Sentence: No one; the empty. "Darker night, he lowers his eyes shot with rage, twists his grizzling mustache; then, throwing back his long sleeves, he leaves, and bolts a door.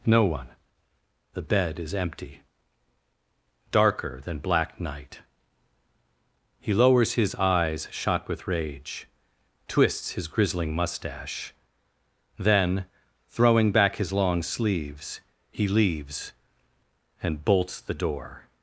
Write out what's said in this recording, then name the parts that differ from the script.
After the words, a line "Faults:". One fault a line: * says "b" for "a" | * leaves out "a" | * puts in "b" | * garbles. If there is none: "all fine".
No one; the bed is empty. "Darker than black night, he lowers his eyes shot with rage, twists his grizzling mustache; then, throwing back his long sleeves, he leaves, and bolts the door.
Faults:
* puts in "bed is"
* puts in "than black"
* says "the" for "a"